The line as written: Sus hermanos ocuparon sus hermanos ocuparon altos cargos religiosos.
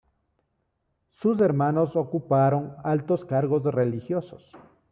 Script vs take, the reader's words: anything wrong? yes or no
yes